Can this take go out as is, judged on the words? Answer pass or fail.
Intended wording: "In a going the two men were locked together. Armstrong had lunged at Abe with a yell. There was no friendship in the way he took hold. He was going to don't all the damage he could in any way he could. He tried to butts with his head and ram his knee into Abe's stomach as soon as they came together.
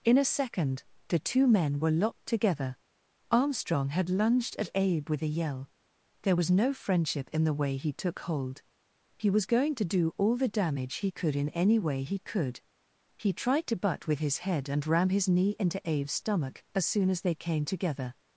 fail